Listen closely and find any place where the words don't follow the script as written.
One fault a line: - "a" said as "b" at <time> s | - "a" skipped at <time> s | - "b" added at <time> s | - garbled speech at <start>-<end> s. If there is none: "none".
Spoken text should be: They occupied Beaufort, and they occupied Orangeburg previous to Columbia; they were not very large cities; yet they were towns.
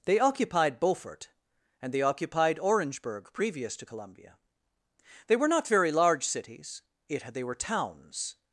none